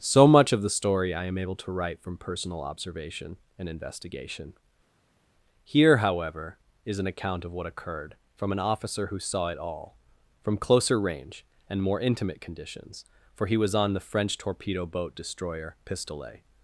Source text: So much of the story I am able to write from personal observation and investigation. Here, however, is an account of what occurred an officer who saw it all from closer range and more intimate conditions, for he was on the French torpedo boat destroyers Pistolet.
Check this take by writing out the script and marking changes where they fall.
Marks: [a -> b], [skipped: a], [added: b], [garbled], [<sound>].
So much of the story I am able to write from personal observation and investigation. Here, however, is an account of what occurred [added: from] an officer who saw it all from closer range and more intimate conditions, for he was on the French torpedo boat [destroyers -> destroyer] Pistolet.